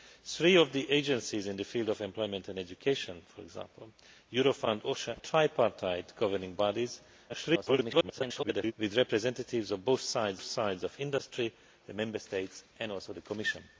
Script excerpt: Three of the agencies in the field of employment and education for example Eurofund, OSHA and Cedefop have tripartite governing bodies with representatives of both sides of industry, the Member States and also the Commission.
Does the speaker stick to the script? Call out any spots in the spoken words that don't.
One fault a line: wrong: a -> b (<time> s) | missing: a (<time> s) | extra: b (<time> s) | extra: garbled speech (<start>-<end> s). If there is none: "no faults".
missing: and Cedefop have (5.2 s)
extra: garbled speech (7.3-8.7 s)
extra: sides (10.4 s)